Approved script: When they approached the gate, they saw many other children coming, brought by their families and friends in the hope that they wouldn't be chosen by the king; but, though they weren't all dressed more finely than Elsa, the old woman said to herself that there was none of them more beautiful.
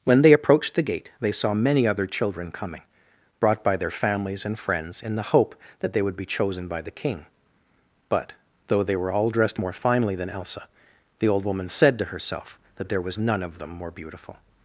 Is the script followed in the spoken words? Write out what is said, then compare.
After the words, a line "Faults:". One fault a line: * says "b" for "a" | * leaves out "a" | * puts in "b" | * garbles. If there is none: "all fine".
When they approached the gate, they saw many other children coming, brought by their families and friends in the hope that they would be chosen by the king; but, though they were all dressed more finely than Elsa, the old woman said to herself that there was none of them more beautiful.
Faults:
* says "would" for "wouldn't"
* says "were" for "weren't"